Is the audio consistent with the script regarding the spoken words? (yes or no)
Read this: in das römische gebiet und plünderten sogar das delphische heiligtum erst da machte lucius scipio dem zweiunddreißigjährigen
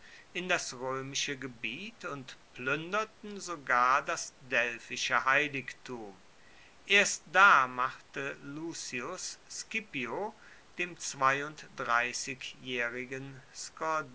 yes